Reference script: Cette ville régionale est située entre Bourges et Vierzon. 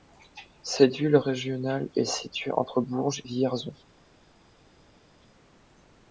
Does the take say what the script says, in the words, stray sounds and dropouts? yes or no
no